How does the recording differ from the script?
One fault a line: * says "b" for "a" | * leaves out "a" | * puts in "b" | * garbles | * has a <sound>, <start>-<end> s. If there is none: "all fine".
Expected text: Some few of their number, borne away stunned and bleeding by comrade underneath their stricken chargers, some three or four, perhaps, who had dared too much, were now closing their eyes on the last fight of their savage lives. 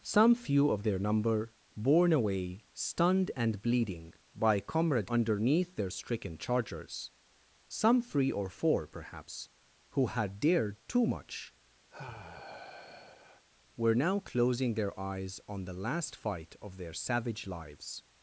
* has a sigh, 11.9-13.4 s